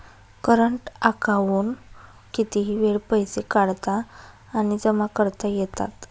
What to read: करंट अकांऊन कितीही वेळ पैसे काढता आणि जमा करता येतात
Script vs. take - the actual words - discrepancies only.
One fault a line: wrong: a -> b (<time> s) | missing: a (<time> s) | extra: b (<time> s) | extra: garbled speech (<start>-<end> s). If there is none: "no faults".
no faults